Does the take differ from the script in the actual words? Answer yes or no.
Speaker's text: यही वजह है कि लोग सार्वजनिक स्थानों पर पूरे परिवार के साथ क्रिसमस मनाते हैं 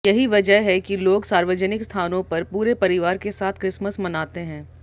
no